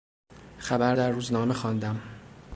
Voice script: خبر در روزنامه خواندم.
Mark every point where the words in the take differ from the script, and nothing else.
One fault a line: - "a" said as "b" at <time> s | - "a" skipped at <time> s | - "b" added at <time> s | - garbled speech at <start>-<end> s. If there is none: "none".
none